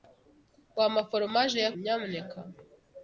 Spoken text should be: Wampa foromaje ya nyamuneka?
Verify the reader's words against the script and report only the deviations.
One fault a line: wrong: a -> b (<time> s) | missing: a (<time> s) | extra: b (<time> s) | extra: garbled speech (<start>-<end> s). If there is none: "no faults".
no faults